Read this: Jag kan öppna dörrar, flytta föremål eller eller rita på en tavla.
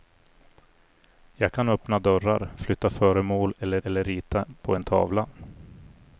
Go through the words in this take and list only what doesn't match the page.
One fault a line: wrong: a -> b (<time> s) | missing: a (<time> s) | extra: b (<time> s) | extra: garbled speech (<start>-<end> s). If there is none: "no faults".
no faults